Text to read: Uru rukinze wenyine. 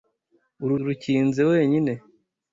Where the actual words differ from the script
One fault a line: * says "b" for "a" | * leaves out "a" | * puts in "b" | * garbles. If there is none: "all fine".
all fine